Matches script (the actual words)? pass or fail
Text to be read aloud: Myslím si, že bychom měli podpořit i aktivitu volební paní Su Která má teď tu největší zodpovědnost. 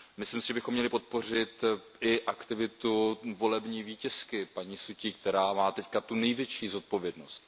fail